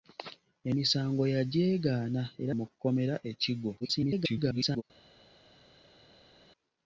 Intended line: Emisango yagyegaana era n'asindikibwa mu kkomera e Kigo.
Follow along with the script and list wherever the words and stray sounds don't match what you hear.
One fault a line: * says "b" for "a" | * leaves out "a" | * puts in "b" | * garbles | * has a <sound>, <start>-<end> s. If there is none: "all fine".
* leaves out "n'asindikibwa"
* garbles